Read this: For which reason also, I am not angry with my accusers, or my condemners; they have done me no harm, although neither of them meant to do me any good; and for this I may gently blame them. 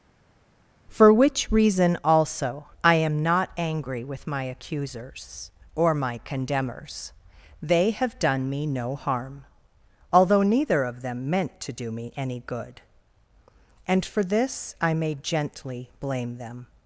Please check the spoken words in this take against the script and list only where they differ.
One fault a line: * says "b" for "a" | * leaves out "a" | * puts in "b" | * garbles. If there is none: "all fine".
all fine